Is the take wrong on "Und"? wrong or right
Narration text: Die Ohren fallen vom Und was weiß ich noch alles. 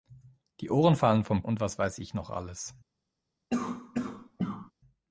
right